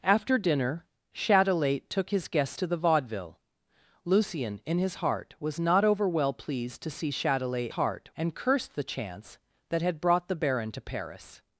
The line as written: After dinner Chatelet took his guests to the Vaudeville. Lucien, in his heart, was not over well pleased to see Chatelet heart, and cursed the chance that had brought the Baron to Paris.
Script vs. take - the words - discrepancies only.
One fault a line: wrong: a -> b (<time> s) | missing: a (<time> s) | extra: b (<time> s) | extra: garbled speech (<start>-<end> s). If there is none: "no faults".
no faults